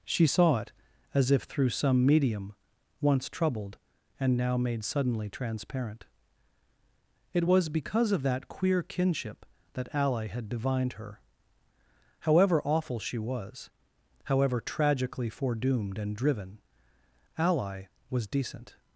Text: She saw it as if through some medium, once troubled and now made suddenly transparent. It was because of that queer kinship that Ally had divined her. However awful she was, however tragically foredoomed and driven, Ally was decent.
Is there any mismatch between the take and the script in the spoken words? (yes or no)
no